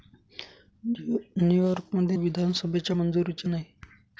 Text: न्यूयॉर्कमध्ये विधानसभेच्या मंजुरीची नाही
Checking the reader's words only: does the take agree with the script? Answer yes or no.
yes